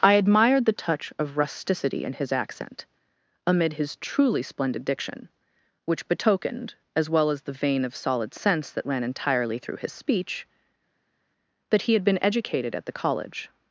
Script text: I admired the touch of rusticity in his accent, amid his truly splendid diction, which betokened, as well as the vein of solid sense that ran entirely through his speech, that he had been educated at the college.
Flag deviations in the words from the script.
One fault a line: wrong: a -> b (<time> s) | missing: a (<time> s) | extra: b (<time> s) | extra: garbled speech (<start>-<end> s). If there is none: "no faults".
no faults